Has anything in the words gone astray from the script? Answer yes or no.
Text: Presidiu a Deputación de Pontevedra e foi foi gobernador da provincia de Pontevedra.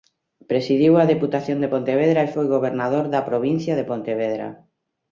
yes